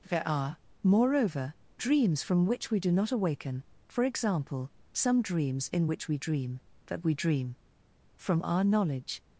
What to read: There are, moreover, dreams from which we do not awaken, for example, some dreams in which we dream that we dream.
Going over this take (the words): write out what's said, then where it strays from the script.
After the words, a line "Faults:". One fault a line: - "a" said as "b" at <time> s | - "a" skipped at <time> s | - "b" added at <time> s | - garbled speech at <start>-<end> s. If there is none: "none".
There are, moreover, dreams from which we do not awaken, for example, some dreams in which we dream that we dream. From our knowledge
Faults:
- "From our knowledge" added at 8.2 s